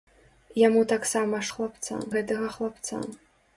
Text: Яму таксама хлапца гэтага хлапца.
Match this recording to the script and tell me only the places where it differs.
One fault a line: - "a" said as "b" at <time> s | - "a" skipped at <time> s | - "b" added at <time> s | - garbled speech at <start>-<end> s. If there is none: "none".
none